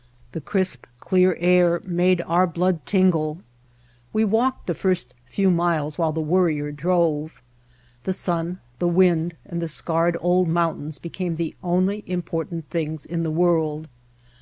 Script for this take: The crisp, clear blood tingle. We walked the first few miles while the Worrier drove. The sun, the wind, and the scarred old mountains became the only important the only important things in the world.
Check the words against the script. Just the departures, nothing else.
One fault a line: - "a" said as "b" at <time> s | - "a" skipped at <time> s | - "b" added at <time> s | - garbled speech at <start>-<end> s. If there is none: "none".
- "air made our" added at 1.4 s
- "the only important" skipped at 12.7 s